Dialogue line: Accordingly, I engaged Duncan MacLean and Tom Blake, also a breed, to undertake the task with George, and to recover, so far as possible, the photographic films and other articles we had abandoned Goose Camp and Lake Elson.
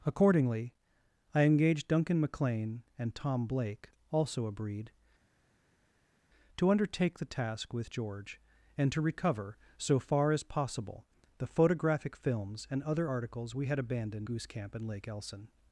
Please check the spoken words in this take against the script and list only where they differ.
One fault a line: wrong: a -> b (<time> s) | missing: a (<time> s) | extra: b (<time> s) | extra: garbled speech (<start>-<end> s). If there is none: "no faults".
no faults